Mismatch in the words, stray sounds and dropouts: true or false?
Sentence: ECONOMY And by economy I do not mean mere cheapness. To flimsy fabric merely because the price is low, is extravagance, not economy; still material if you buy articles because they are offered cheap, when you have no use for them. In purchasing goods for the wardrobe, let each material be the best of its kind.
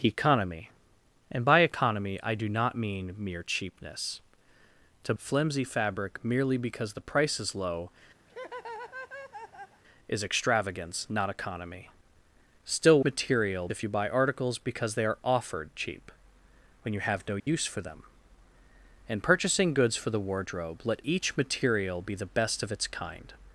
true